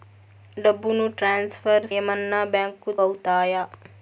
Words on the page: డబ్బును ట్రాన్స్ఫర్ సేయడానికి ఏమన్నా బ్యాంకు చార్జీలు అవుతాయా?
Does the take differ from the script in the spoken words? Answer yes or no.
yes